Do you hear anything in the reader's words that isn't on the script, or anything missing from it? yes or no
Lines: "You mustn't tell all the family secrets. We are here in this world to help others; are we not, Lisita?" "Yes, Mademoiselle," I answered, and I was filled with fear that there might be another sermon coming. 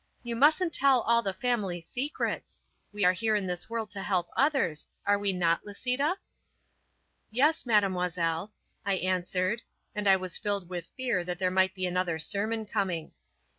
no